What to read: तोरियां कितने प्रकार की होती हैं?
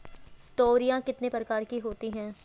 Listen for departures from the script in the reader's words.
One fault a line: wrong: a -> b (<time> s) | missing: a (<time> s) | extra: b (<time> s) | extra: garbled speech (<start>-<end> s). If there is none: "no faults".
no faults